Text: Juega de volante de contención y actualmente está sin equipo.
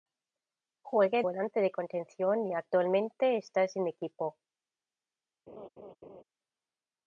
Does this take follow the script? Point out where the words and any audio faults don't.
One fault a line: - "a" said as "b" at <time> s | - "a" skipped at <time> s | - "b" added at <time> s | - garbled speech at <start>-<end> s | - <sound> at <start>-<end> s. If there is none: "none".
- "de" skipped at 1.2 s
- laugh at 5.5-6.2 s